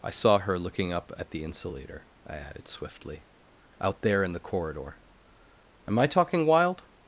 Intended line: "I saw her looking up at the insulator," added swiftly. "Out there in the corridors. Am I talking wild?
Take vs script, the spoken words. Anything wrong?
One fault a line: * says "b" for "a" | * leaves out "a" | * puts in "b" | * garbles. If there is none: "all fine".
* puts in "I"
* says "corridor" for "corridors"